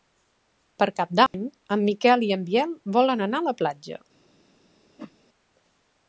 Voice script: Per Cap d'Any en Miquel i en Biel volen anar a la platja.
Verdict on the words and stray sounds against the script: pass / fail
fail